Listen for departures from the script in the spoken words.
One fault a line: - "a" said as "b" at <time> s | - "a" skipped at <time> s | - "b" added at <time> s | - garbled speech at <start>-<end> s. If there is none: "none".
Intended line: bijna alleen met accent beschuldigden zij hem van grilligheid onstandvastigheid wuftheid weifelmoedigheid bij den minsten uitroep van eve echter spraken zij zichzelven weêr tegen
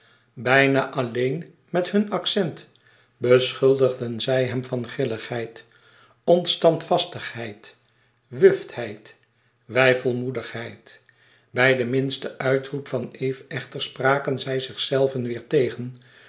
- "hun" added at 1.9 s